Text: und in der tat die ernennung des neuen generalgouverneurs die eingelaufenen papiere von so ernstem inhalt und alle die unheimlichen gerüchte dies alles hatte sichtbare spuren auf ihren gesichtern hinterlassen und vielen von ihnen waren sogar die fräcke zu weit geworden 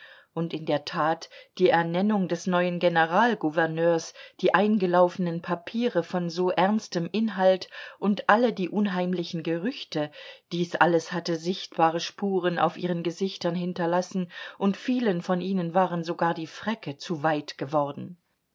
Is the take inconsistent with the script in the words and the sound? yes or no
no